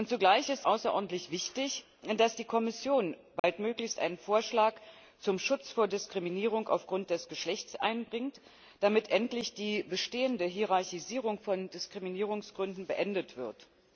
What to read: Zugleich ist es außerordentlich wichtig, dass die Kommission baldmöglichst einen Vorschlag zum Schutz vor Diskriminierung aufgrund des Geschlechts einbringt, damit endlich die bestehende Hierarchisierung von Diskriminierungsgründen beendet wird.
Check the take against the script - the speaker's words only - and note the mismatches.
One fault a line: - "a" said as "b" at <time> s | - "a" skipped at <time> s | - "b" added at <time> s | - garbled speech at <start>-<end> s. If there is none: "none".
- "es" skipped at 0.7 s